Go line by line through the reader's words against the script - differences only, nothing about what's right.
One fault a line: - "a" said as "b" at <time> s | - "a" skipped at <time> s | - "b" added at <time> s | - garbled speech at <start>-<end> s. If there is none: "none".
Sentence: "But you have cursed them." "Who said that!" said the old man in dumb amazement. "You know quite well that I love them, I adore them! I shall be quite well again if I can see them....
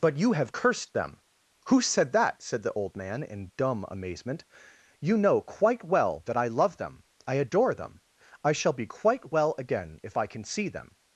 none